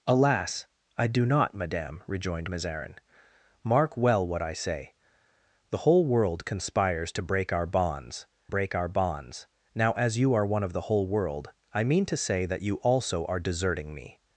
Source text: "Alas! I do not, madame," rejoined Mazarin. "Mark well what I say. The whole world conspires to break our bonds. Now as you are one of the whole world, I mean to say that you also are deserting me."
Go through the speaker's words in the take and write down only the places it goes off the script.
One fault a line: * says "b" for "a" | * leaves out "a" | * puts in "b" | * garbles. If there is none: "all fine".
* puts in "break our bonds"